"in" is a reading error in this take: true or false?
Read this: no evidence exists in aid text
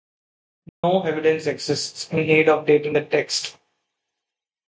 false